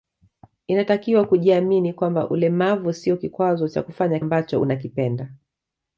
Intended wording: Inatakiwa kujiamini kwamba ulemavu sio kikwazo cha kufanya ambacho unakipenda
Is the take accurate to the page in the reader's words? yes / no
yes